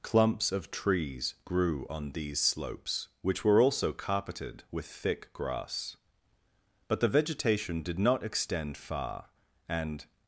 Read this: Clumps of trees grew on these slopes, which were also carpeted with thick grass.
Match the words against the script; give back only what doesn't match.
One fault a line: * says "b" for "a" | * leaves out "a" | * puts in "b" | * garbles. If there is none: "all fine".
* puts in "But the vegetation did not extend far and"